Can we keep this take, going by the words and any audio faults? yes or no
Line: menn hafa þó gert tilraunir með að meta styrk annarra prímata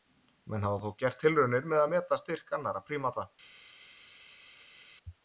yes